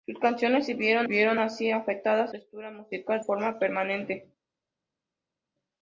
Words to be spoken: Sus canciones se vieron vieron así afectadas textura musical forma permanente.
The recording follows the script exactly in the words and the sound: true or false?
true